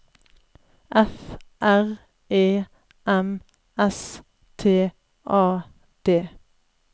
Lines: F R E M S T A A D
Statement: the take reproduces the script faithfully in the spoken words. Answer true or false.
false